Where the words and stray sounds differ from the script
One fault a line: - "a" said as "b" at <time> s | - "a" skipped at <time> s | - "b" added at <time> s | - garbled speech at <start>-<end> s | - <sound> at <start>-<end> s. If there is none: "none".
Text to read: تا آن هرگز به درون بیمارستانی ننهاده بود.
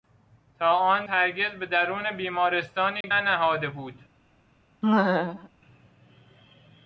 - dropout at 3.0-3.0 s
- laugh at 4.8-5.5 s